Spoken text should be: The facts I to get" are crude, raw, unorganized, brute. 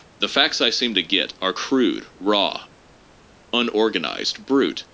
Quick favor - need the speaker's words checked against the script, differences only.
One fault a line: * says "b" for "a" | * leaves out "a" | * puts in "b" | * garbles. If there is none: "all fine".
* puts in "seem"